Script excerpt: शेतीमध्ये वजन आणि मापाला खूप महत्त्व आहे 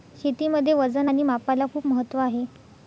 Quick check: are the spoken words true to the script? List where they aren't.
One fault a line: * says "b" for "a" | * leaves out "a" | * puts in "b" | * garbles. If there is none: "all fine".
all fine